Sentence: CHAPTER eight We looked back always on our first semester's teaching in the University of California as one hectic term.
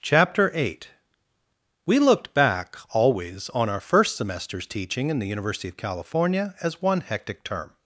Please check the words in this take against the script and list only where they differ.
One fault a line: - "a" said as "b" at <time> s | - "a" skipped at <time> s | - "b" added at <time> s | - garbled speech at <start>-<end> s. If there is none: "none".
none